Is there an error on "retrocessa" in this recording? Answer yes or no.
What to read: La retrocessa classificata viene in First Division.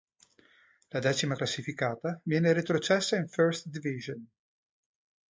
yes